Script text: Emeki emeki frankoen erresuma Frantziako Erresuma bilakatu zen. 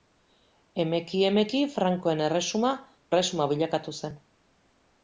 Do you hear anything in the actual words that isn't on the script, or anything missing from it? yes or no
yes